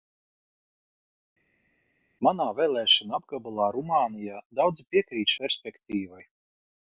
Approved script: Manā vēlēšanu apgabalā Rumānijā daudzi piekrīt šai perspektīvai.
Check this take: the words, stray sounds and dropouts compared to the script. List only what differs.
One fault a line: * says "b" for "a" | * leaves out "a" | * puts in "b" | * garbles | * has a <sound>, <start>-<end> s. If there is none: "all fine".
* leaves out "šai"